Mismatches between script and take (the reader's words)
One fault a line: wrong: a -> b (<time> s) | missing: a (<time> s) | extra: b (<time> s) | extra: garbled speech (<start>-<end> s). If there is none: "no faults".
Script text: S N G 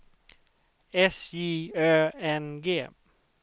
extra: J Ö (1.3 s)